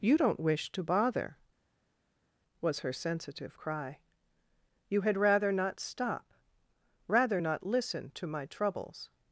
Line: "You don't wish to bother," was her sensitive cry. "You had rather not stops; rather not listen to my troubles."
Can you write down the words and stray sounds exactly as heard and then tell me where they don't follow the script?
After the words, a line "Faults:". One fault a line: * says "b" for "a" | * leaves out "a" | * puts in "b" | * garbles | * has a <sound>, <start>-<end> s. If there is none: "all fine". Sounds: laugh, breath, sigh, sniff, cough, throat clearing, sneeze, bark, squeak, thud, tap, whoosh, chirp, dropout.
"You don't wish to bother," was her sensitive cry. "You had rather not stop; rather not listen to my troubles."
Faults:
* says "stop" for "stops"